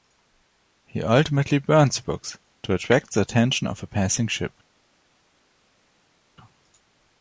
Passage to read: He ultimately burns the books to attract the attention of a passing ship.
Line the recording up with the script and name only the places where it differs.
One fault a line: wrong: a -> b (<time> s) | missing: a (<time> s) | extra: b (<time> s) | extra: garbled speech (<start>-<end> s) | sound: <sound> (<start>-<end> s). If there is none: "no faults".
no faults